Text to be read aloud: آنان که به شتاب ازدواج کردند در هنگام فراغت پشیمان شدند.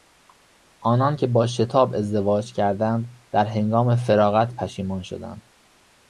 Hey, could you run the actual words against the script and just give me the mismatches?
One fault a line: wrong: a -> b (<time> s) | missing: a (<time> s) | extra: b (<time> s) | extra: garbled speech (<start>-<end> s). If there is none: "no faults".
wrong: به -> با (1.3 s)